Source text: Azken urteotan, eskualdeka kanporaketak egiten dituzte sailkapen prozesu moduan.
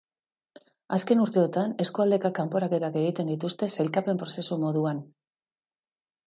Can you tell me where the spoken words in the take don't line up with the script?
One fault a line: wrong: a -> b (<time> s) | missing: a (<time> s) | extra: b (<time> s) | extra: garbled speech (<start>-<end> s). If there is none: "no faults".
no faults